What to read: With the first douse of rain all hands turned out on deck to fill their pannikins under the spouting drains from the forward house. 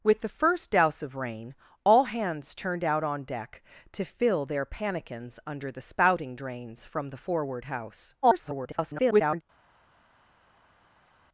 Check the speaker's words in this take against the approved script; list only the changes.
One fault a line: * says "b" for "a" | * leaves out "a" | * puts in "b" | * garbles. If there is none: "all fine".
* garbles